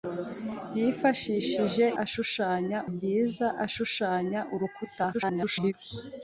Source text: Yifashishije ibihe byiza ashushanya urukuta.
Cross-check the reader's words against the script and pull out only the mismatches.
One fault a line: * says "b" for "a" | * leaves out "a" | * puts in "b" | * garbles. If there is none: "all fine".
* says "ashushanya" for "ibihe"
* garbles